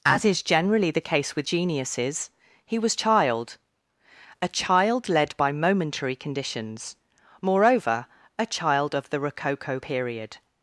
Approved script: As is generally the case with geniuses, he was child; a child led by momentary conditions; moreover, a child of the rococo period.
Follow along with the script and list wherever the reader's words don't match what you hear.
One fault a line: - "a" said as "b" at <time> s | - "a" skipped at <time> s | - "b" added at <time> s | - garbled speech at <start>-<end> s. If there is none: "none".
none